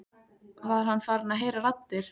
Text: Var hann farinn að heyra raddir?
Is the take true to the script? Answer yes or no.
yes